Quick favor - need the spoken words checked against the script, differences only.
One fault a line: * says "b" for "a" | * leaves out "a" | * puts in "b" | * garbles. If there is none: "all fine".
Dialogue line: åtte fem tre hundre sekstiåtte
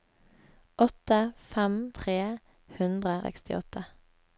all fine